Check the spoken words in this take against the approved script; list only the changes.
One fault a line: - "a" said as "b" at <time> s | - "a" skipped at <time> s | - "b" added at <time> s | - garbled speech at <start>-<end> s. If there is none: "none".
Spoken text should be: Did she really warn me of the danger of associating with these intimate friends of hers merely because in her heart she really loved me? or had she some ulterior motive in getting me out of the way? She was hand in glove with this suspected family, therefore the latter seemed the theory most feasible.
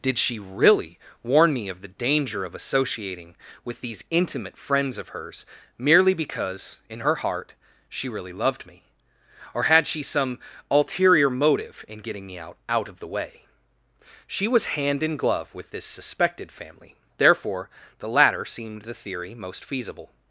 - "out" added at 12.7 s